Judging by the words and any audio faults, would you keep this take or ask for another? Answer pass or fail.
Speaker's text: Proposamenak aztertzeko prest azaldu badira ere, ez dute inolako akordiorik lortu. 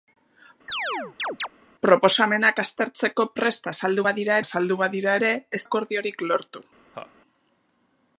fail